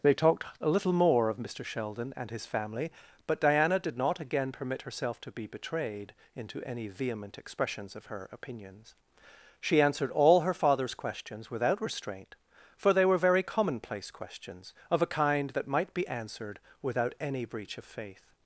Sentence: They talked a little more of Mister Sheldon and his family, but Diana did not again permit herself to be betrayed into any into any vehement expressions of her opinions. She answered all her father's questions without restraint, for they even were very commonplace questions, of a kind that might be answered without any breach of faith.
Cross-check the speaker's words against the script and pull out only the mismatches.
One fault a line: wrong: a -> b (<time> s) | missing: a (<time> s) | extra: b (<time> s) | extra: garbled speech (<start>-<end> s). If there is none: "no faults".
missing: into any (6.9 s)
missing: even (13.1 s)